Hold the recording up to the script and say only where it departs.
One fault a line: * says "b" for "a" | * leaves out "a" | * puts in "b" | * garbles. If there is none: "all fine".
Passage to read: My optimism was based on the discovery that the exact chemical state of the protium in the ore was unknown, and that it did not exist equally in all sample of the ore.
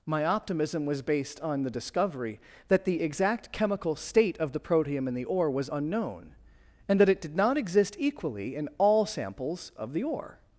* says "samples" for "sample"